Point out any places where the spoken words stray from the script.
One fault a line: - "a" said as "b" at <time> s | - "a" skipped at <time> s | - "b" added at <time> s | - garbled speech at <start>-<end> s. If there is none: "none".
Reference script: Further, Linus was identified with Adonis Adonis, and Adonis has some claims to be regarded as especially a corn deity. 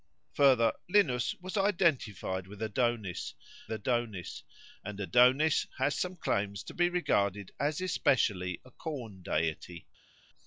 none